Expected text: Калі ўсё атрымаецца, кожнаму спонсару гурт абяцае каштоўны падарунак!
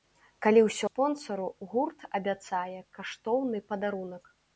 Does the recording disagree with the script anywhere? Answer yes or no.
yes